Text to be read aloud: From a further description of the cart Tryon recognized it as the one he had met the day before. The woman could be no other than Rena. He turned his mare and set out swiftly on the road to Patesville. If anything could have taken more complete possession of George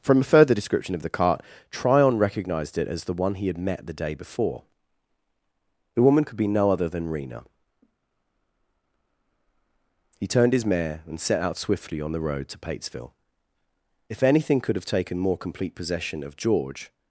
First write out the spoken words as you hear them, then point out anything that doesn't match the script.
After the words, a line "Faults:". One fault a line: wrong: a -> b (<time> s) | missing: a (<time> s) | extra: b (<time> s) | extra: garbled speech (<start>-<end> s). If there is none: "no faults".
From a further description of the cart Tryon recognized it as the one he had met the day before. The woman could be no other than Rena. He turned his mare and set out swiftly on the road to Patesville. If anything could have taken more complete possession of George
Faults:
no faults